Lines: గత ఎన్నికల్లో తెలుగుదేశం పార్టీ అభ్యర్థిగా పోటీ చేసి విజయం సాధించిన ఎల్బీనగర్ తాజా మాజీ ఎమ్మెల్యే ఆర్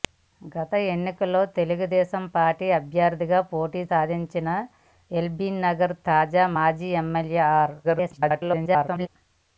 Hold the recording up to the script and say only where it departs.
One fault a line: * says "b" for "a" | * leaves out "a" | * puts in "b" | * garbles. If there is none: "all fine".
* leaves out "చేసి విజయం"
* garbles